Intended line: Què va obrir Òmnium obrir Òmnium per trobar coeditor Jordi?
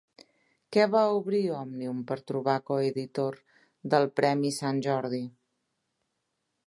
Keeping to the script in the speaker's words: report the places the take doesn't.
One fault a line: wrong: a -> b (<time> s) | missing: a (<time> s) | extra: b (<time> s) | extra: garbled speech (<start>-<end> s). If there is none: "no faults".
missing: obrir Òmnium (2.0 s)
extra: del Premi Sant (4.0 s)